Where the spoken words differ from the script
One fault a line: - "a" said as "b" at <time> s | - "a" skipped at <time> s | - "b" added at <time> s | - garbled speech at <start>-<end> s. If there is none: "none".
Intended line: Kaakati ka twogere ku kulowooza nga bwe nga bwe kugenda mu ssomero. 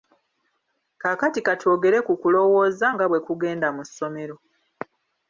- "nga bwe" skipped at 3.2 s